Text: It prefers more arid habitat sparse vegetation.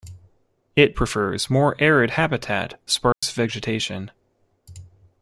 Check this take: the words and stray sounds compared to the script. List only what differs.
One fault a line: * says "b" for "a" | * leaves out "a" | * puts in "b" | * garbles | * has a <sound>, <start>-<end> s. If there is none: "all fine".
* has a dropout, 3.1-3.2 s